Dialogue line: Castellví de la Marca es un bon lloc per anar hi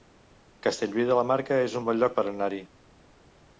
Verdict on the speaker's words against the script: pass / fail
pass